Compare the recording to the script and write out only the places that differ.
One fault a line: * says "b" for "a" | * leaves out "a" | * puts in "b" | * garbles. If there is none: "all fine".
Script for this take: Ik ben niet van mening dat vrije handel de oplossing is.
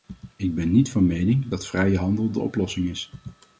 all fine